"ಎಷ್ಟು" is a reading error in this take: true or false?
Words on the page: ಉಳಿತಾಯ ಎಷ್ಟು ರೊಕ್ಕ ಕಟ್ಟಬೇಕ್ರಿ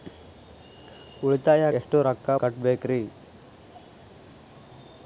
false